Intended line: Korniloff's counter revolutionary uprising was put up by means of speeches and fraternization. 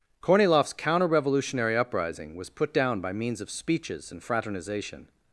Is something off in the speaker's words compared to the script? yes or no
yes